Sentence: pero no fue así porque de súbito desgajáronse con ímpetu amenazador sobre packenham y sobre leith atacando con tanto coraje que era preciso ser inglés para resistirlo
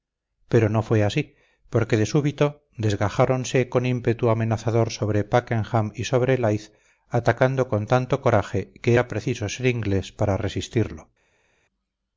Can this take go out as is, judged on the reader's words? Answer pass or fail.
pass